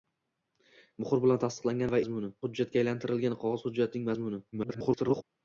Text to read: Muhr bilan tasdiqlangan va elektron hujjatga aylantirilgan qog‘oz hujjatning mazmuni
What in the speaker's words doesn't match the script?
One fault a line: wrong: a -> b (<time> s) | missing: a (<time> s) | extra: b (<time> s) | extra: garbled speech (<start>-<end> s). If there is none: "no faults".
wrong: elektron -> mazmuni (2.0 s)
extra: garbled speech (4.5-5.2 s)